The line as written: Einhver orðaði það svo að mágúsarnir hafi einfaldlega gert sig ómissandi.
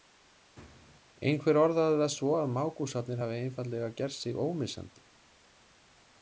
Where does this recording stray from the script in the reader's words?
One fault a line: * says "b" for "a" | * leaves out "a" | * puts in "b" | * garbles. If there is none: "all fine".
all fine